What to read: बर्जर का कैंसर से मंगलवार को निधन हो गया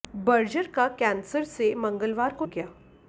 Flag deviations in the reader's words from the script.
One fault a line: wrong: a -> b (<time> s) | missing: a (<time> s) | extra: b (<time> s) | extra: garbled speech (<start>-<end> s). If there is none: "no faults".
missing: निधन हो (2.5 s)